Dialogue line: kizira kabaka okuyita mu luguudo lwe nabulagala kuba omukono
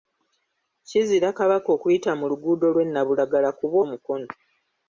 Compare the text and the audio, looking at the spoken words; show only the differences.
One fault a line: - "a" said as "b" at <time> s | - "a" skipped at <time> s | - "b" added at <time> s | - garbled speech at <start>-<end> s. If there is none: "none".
none